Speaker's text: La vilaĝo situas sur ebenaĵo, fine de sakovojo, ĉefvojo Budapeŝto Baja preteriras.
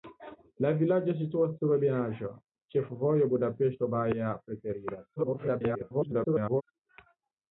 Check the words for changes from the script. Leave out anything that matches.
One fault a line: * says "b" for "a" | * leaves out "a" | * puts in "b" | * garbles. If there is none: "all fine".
* leaves out "fine de sakovojo"
* garbles